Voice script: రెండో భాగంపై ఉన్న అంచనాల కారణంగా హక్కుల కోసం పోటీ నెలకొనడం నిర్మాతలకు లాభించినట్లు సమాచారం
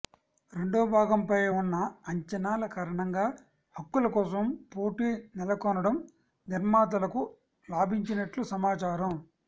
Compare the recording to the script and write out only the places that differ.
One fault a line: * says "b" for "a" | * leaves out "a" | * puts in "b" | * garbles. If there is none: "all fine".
all fine